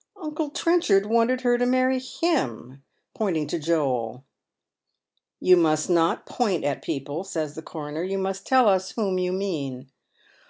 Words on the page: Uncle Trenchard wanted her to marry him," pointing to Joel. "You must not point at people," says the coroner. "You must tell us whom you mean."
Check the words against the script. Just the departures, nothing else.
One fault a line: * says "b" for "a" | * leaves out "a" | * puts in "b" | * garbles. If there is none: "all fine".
all fine